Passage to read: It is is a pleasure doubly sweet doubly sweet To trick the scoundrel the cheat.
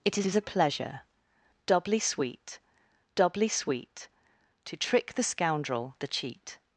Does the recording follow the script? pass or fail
pass